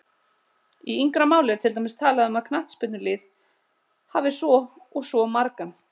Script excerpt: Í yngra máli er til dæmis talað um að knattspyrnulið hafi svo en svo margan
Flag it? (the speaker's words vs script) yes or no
yes